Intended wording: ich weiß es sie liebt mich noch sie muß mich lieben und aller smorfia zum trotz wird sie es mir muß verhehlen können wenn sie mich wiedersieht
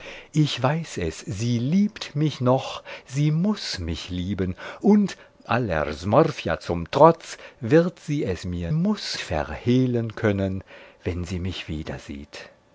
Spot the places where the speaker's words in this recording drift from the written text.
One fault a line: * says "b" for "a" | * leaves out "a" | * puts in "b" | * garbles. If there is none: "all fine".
all fine